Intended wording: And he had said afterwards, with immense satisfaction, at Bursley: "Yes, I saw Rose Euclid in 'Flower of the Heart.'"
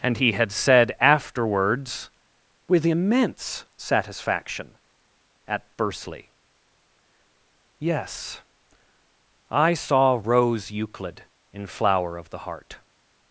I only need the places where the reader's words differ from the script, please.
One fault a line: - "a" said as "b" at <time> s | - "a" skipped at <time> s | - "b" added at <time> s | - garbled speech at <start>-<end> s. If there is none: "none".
none